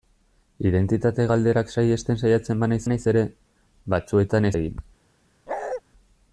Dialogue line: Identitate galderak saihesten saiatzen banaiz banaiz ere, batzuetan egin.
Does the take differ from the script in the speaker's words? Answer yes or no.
no